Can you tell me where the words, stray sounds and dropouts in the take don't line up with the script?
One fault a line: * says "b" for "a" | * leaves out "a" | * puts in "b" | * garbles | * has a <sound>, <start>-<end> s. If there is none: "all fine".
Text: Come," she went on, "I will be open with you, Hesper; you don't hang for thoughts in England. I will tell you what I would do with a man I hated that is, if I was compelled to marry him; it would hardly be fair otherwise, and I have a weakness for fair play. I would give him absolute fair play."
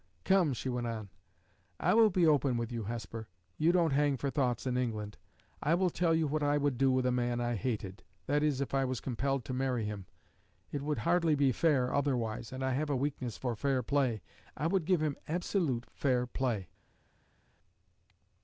all fine